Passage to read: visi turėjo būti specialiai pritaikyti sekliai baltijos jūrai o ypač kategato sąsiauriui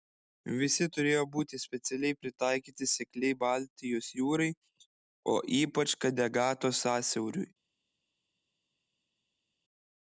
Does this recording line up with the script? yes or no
yes